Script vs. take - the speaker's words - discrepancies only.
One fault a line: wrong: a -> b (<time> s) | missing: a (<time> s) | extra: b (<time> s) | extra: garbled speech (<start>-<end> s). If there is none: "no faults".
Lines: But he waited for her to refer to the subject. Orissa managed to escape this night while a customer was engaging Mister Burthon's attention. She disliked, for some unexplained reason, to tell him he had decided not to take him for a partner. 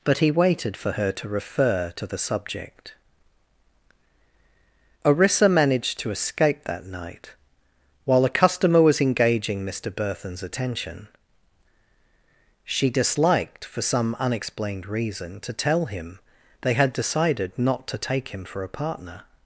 wrong: this -> that (6.7 s)
wrong: he -> they (16.6 s)